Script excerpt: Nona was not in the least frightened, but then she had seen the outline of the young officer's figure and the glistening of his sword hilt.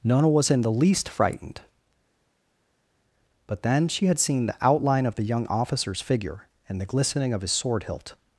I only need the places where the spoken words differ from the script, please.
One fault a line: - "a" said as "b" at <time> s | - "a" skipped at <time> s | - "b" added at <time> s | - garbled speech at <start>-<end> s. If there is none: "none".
- "not" skipped at 0.5 s